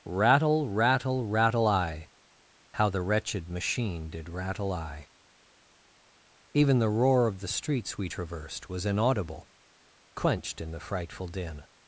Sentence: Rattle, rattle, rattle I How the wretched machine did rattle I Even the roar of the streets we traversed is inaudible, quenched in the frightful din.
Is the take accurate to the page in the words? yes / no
no